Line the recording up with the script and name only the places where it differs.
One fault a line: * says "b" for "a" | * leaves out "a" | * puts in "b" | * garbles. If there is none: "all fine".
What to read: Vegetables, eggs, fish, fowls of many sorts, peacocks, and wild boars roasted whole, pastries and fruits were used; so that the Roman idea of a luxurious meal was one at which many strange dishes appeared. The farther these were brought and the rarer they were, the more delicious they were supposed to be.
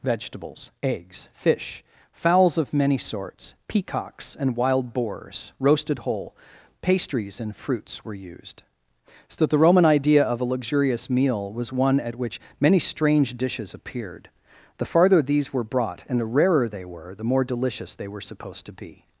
all fine